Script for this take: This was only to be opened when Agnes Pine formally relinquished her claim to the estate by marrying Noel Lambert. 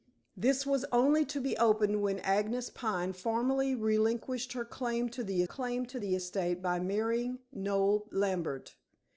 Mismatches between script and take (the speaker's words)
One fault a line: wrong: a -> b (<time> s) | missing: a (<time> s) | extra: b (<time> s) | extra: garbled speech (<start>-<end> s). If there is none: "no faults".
extra: claim to the (5.4 s)